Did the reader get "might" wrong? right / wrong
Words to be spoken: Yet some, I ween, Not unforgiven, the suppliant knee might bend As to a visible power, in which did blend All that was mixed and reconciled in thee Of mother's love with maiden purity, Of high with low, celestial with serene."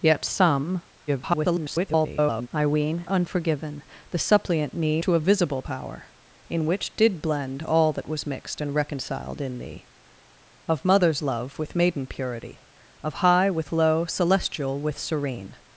wrong